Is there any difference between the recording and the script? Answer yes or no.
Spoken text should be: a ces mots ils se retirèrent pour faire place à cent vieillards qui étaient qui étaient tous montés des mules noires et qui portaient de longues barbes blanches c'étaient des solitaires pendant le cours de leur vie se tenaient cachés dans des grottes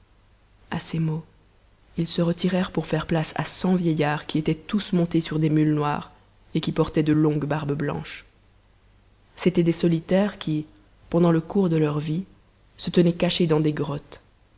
yes